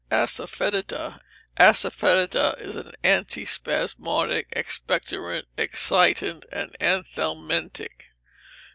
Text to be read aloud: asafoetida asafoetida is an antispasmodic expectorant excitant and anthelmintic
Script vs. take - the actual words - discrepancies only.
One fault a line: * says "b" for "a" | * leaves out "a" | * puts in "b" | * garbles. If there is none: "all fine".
all fine